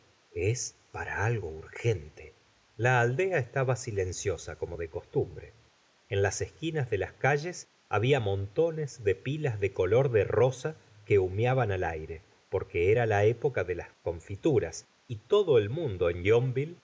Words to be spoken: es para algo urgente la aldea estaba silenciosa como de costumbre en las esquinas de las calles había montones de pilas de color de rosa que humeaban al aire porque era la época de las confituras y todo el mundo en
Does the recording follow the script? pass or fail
pass